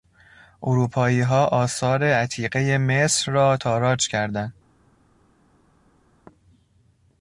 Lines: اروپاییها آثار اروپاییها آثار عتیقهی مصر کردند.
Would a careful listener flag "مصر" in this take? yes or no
yes